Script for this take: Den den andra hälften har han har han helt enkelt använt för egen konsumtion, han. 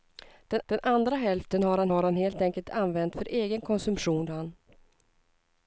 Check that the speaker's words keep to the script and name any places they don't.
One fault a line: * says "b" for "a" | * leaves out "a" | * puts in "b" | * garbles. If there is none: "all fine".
all fine